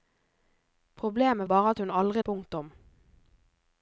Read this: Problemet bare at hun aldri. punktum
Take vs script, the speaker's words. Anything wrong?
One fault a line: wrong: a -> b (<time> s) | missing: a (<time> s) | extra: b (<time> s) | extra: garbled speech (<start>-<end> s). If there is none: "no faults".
no faults